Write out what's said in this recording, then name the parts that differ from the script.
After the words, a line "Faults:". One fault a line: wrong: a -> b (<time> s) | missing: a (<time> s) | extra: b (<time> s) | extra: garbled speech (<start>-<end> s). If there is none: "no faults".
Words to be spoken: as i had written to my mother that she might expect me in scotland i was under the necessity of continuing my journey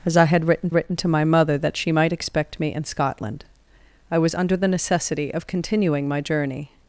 as i had written written to my mother that she might expect me in scotland i was under the necessity of continuing my journey
Faults:
extra: written (0.7 s)